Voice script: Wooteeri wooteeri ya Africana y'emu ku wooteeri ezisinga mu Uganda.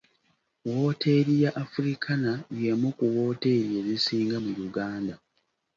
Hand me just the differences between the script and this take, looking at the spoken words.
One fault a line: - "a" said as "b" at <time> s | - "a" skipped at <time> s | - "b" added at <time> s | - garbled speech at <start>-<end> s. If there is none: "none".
- "wooteeri" skipped at 1.3 s